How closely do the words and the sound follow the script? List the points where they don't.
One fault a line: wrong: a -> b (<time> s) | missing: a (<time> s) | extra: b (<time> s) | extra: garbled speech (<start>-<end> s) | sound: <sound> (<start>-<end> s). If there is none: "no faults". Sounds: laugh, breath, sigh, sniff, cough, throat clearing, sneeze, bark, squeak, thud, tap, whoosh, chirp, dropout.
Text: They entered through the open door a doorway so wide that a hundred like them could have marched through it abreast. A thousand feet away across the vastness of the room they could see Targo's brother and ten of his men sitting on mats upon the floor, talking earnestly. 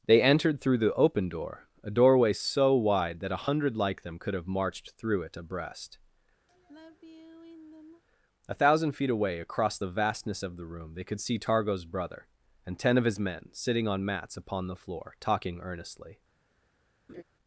sound: sigh (6.5-8.0 s)
sound: laugh (17.1-17.2 s)